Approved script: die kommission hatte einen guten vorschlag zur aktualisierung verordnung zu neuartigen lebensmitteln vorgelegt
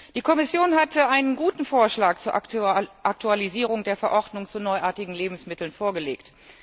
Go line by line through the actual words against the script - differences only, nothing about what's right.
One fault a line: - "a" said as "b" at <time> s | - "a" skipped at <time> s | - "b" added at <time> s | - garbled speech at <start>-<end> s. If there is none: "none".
- "der" added at 3.8 s